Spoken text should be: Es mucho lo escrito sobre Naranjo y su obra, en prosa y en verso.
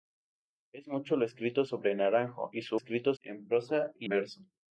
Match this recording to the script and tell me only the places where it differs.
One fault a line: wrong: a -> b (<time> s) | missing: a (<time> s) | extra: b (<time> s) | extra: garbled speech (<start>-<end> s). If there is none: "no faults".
wrong: obra -> escrito (2.7 s)
missing: en (4.1 s)